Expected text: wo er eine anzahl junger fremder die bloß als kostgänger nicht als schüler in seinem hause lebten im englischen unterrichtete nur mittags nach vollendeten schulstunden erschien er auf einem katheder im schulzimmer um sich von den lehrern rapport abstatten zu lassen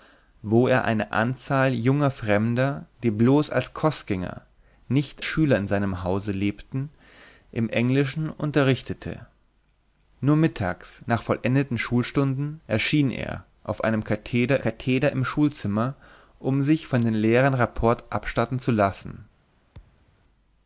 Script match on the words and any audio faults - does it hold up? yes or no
no